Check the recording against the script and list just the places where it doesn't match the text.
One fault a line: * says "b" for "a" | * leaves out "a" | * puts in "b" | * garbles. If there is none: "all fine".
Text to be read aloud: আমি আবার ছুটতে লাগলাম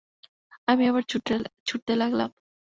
all fine